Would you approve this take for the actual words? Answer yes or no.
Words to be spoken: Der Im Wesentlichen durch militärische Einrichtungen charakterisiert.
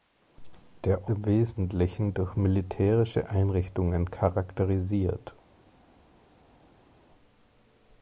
yes